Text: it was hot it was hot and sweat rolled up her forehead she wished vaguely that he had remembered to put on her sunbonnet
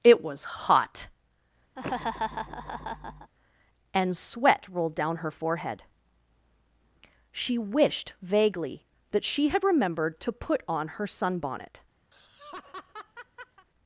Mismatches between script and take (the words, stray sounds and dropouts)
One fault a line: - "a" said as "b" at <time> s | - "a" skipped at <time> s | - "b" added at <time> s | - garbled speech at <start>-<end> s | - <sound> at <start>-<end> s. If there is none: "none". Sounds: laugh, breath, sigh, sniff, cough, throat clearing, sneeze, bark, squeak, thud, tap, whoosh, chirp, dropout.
- "it was hot" skipped at 1.1 s
- laugh at 1.8-3.3 s
- "up" said as "down" at 4.9 s
- "he" said as "she" at 9.2 s
- laugh at 12.1-13.7 s